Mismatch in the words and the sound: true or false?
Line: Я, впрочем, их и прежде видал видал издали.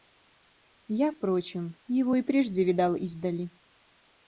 true